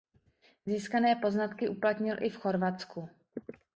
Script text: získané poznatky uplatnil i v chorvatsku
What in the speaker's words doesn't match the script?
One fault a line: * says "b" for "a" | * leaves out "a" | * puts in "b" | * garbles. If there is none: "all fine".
all fine